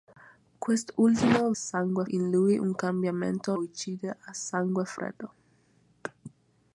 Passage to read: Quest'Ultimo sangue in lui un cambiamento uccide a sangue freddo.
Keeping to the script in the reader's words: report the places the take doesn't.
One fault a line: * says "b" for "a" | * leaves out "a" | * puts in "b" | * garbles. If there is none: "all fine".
all fine